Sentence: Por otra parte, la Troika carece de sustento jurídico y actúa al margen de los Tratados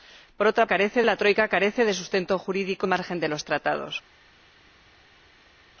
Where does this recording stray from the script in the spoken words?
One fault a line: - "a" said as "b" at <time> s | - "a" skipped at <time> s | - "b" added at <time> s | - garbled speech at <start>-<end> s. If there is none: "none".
- "parte" said as "carece" at 0.7 s
- "y actúa al" skipped at 2.9 s